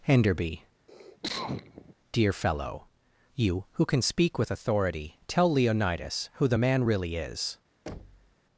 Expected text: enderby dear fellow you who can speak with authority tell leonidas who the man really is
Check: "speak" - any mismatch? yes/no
no